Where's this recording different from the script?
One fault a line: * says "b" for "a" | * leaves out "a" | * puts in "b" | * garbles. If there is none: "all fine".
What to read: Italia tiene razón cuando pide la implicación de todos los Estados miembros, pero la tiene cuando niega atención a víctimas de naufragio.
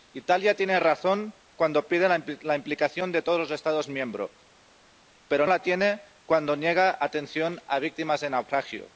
all fine